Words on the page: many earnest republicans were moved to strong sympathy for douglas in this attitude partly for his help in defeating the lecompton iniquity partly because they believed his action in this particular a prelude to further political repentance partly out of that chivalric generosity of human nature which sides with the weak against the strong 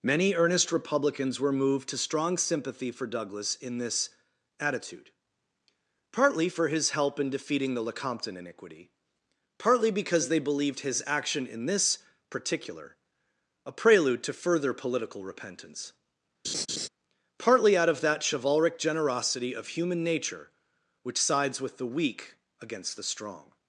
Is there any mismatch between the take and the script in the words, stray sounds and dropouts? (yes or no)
yes